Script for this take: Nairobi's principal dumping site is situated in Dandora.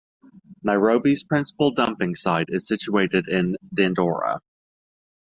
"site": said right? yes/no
yes